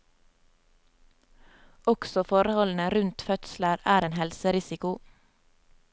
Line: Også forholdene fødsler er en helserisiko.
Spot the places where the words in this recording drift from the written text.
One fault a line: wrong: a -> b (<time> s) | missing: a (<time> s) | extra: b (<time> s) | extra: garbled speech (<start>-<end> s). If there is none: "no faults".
extra: rundt (2.9 s)